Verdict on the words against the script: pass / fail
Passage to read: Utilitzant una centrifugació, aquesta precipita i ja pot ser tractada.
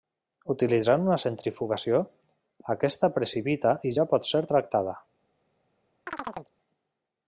pass